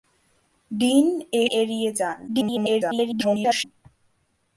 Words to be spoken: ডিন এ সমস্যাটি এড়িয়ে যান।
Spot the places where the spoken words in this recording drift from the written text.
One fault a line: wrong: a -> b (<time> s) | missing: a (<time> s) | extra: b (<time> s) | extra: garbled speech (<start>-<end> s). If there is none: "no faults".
missing: সমস্যাটি (1.4 s)
extra: garbled speech (2.3-3.6 s)